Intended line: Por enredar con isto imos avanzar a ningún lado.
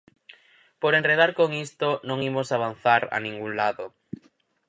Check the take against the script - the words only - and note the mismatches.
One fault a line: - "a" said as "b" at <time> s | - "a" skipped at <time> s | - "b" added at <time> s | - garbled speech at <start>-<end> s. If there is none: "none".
- "non" added at 2.1 s